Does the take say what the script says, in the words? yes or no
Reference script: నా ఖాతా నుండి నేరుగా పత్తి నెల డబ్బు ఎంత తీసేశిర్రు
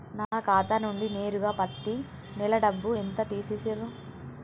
yes